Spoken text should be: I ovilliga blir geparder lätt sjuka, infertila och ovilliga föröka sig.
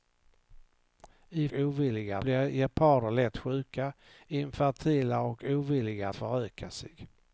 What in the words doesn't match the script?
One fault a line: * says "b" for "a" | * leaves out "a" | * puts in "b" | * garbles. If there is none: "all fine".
all fine